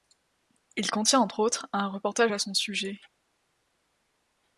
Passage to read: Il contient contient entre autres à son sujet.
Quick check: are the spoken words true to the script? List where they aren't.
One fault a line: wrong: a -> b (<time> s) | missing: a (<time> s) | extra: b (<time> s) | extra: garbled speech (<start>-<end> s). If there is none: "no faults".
missing: contient (1.2 s)
extra: un reportage (1.7 s)